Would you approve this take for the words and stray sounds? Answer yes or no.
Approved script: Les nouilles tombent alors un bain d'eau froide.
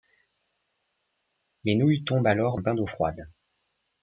yes